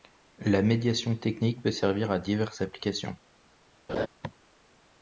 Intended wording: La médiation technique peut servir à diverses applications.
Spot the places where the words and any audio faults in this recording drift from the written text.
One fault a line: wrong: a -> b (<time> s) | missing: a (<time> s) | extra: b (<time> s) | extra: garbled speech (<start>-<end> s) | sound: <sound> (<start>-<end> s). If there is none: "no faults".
sound: laugh (3.9-4.1 s)